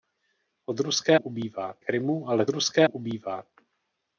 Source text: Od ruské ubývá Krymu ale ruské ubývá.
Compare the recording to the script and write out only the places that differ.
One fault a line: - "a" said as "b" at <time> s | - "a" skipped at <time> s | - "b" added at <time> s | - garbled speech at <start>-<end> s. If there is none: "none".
none